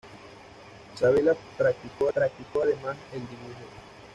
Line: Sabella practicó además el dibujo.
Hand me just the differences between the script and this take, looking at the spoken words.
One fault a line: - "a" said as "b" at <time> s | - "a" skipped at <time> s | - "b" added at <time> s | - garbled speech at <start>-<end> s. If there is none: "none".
- "practicó" added at 2.2 s